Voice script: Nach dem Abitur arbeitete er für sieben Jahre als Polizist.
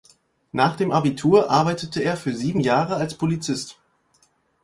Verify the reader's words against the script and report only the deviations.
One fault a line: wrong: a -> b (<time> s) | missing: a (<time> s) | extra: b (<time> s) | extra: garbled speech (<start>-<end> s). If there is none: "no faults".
no faults